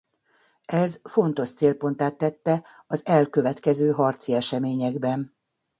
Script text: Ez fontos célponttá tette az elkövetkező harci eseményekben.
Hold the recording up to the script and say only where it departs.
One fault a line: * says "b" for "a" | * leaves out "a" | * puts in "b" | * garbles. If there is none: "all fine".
all fine